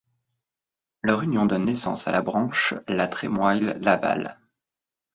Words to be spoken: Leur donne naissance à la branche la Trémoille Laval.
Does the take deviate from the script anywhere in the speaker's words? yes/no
yes